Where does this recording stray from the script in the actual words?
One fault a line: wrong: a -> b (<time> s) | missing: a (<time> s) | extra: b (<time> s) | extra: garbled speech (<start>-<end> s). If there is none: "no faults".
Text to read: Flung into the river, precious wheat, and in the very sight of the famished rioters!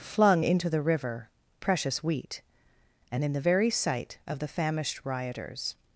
no faults